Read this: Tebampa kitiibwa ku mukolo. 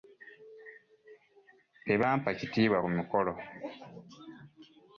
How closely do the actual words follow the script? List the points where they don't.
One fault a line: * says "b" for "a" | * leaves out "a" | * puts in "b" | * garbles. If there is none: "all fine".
all fine